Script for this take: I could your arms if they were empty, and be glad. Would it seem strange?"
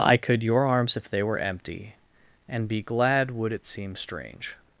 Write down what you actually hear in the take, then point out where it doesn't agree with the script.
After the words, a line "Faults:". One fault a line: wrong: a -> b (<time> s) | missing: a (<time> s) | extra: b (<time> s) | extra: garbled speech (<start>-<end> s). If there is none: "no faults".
I could your arms if they were empty, and be glad. Would it seem strange?"
Faults:
no faults